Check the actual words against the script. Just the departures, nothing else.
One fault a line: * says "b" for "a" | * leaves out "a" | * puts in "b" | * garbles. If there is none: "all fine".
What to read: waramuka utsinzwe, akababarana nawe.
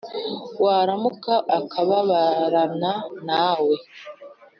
* leaves out "utsinzwe"